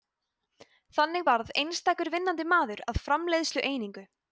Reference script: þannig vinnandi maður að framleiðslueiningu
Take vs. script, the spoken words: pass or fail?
fail